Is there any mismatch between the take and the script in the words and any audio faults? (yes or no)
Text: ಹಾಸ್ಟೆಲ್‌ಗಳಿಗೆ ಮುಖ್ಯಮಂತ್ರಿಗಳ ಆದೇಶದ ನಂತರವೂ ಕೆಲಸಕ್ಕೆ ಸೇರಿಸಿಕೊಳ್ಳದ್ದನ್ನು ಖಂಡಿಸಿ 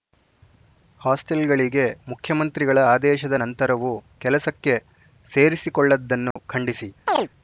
yes